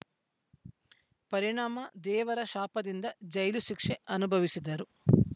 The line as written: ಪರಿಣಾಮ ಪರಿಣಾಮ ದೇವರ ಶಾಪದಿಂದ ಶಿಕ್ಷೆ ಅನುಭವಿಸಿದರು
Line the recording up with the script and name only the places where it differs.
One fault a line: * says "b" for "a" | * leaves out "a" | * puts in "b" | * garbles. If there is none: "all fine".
* leaves out "ಪರಿಣಾಮ"
* puts in "ಜೈಲು"